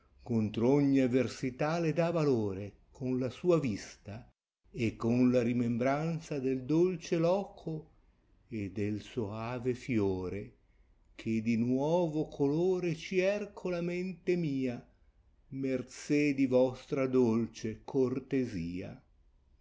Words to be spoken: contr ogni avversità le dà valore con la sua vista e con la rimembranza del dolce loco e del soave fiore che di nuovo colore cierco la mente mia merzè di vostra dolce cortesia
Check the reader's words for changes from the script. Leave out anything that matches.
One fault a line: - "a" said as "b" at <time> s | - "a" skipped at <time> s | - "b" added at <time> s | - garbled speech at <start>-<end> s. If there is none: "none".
none